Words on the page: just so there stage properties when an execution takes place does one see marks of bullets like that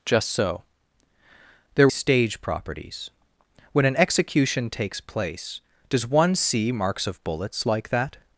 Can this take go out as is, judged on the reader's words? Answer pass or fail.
pass